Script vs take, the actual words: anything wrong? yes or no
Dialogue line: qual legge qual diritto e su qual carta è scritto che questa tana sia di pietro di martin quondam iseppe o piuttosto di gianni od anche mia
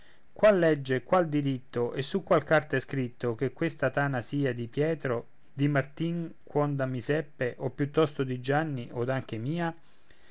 no